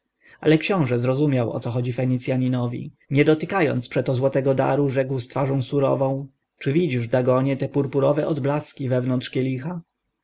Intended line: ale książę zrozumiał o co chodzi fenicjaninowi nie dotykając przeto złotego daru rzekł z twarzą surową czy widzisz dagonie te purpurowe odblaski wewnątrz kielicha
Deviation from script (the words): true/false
false